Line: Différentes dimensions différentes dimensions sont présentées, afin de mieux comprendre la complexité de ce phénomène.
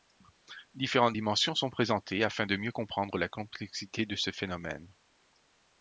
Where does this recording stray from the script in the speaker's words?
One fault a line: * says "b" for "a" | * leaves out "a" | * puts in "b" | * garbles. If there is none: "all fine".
* leaves out "différentes dimensions"